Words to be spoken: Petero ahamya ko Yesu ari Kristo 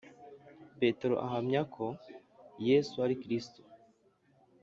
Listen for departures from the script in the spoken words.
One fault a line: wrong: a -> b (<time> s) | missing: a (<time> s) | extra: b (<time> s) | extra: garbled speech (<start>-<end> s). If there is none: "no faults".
no faults